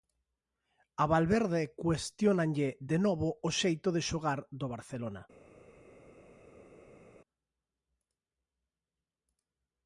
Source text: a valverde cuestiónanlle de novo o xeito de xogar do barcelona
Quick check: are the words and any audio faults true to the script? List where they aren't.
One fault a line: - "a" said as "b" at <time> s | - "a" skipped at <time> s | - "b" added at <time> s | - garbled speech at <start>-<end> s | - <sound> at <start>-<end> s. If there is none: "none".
none